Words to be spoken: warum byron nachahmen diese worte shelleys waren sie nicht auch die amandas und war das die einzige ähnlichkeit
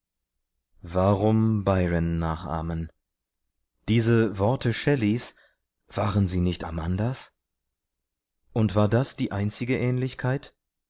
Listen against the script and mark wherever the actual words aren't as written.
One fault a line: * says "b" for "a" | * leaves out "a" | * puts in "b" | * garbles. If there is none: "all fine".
* leaves out "auch die"